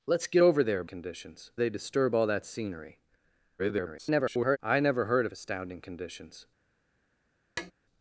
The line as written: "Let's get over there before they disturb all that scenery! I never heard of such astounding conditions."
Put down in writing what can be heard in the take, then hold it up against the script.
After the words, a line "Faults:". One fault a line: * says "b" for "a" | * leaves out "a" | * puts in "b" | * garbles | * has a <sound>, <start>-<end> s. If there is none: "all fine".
"Let's get over there conditions they disturb all that scenery! [garbled] I never heard of astounding conditions."
Faults:
* says "conditions" for "before"
* garbles
* leaves out "such"
* has a tap, 7.6-7.7 s